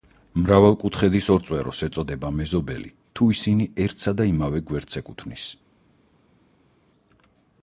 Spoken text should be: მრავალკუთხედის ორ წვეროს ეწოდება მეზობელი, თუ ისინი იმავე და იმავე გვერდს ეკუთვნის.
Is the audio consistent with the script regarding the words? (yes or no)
no